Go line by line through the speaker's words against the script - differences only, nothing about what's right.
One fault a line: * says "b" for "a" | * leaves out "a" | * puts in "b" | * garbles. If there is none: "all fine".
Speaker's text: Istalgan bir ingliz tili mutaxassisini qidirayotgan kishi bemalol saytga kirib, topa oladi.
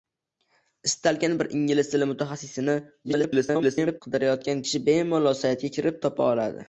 * garbles